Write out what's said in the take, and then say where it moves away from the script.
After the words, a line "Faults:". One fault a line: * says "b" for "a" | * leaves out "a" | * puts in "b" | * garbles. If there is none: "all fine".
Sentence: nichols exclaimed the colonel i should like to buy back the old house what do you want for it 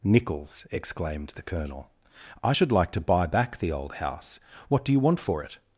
nichols exclaimed the colonel i should like to buy back the old house what do you want for it
Faults:
all fine